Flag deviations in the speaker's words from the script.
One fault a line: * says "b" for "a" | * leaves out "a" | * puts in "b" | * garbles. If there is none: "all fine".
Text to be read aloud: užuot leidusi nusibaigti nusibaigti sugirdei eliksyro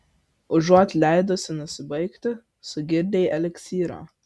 * leaves out "nusibaigti"